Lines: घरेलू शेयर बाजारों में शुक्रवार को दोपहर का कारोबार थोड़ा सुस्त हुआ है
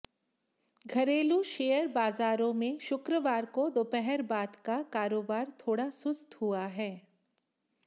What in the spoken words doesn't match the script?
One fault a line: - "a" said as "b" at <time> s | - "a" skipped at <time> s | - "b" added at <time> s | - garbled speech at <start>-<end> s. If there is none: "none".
- "बाद" added at 4.3 s